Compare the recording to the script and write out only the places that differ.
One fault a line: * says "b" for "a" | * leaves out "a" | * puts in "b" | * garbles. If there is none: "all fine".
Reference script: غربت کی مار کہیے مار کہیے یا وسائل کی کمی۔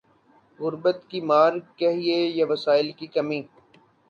* leaves out "مار کہیے"